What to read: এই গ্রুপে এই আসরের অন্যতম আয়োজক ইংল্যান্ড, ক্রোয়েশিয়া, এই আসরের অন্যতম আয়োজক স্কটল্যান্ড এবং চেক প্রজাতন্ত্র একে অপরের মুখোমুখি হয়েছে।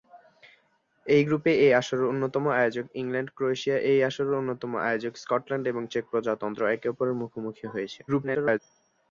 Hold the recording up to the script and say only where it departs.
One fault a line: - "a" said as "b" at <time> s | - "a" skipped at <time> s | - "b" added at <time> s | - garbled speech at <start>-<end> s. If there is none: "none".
- garbled speech at 8.1-8.6 s